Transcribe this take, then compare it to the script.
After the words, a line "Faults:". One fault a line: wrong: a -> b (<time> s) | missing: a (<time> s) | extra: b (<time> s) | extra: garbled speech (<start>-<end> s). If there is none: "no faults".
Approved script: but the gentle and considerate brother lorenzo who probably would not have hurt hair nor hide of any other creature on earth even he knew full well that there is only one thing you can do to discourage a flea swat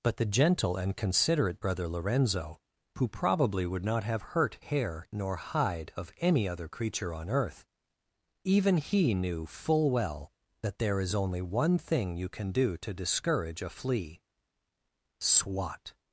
but the gentle and considerate brother lorenzo who probably would not have hurt hair nor hide of any other creature on earth even he knew full well that there is only one thing you can do to discourage a flea swat
Faults:
no faults